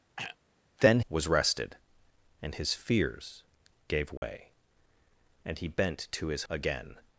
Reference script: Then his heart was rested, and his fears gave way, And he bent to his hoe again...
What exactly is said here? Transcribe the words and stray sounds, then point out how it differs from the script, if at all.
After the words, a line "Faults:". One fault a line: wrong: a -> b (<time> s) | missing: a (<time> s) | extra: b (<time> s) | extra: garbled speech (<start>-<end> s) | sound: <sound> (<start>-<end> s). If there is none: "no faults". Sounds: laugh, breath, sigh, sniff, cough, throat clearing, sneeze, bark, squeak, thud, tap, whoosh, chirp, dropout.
Then was rested, and his fears gave way, And he bent to his again...
Faults:
sound: throat clearing (0.2-0.4 s)
missing: his heart (1.0 s)
sound: dropout (4.2-4.2 s)
missing: hoe (6.4 s)